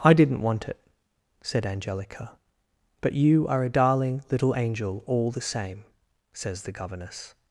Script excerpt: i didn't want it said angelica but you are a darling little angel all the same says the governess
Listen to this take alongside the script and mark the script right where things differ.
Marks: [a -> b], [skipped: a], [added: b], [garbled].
i didn't want it said angelica but you are a darling little angel all the same says the governess